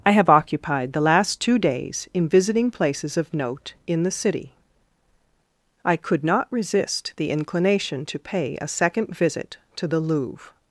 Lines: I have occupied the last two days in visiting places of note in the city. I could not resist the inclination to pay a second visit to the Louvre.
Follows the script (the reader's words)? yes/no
yes